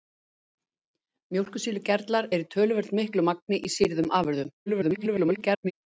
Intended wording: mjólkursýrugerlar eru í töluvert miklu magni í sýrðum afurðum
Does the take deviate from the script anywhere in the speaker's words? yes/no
yes